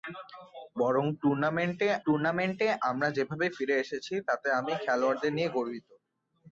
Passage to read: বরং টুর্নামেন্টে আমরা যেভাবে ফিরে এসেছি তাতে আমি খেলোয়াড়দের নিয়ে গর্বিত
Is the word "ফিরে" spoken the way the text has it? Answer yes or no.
yes